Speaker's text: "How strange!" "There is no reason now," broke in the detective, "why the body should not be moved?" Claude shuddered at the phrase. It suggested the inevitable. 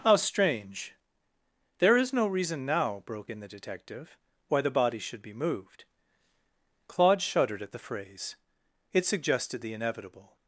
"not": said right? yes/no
no